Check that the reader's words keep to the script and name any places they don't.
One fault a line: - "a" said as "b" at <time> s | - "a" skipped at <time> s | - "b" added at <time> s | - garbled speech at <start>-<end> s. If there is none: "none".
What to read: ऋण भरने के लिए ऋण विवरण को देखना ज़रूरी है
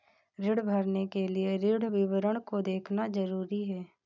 none